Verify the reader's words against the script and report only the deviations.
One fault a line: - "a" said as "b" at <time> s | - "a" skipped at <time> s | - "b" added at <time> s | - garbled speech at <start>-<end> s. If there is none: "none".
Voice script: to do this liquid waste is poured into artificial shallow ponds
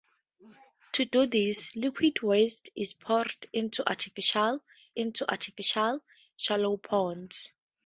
- "into artificial" added at 5.0 s